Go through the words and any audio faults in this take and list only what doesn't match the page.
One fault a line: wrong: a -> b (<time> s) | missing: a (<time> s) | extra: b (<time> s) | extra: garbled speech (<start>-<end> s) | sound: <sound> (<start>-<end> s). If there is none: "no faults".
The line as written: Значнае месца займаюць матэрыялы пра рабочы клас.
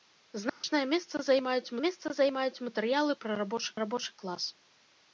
sound: dropout (0.5-0.6 s)
extra: месца займаюць (1.8 s)
extra: рабочы (3.8 s)